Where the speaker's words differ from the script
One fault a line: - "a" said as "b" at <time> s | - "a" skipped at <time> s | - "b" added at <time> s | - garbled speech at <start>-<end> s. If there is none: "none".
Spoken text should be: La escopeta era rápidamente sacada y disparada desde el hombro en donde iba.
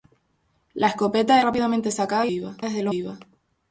- "era" skipped at 1.4 s
- "disparada" said as "iba" at 2.3 s
- "hombro en donde" skipped at 2.9 s